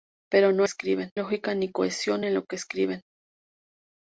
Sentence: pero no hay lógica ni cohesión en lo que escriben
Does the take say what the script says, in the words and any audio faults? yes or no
no